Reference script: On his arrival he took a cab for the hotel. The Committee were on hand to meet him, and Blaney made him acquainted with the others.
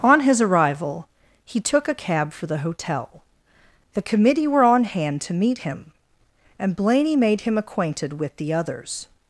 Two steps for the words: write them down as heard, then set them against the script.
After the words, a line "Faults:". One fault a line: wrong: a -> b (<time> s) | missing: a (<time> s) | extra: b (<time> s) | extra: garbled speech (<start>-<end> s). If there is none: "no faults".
On his arrival he took a cab for the hotel. The Committee were on hand to meet him, and Blaney made him acquainted with the others.
Faults:
no faults